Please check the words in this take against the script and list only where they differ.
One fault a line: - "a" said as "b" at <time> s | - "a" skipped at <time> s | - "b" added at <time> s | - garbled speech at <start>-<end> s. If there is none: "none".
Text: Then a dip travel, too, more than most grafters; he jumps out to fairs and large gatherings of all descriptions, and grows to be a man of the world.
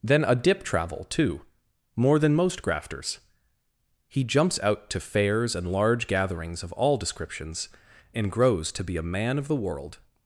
none